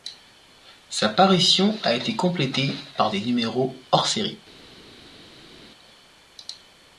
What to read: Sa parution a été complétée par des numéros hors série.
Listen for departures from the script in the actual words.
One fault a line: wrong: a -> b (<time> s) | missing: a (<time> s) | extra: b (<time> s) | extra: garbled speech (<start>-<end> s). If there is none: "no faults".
no faults